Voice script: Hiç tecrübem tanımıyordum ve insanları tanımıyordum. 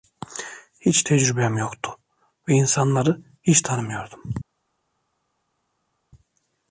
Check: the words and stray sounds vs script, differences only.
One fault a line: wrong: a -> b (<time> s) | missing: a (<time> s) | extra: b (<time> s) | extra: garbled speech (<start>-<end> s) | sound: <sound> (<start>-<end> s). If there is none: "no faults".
wrong: tanımıyordum -> yoktu (1.6 s)
extra: hiç (3.4 s)